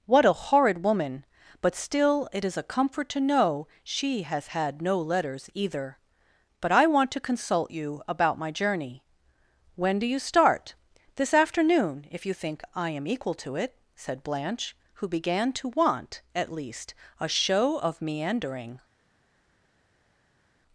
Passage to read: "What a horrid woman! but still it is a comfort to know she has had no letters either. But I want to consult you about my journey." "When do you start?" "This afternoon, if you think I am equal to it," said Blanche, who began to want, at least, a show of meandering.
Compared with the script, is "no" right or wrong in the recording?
right